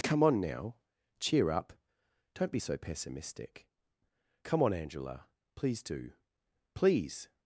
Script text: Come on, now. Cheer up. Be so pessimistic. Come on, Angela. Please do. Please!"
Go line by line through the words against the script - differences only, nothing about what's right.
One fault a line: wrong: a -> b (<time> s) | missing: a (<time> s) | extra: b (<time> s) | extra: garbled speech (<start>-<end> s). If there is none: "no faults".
extra: Don't (2.3 s)